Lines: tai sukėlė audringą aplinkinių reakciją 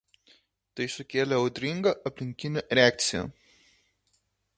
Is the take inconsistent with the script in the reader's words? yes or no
no